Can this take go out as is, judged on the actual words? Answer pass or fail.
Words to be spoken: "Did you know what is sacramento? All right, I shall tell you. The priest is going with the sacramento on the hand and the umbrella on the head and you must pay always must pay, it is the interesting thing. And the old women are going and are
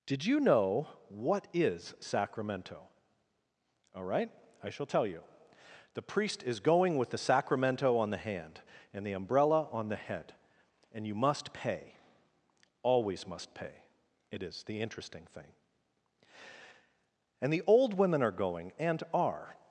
pass